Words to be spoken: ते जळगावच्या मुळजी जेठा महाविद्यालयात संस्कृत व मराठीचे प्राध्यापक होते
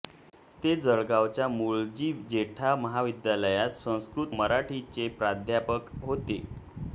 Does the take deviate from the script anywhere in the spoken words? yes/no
yes